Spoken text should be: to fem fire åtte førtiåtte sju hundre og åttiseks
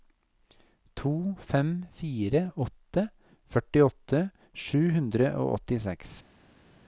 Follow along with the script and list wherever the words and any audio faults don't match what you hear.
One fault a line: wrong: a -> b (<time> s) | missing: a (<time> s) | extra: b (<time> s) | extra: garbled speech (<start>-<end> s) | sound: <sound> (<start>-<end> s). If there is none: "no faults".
no faults